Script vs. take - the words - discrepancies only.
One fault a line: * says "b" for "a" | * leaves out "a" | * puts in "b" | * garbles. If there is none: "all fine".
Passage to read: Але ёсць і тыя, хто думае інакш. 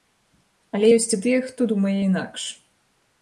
all fine